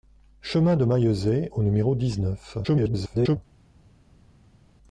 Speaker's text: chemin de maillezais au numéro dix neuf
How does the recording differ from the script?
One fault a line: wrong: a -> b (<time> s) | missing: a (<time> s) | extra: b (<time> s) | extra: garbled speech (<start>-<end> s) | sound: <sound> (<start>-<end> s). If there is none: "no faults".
extra: garbled speech (2.6-3.4 s)